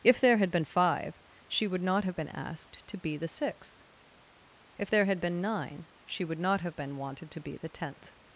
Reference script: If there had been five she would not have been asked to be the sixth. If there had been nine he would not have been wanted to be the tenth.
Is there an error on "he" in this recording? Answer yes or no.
yes